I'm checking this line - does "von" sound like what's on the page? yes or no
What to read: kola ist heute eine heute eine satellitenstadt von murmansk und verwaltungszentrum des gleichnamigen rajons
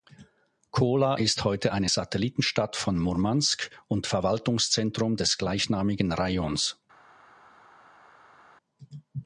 yes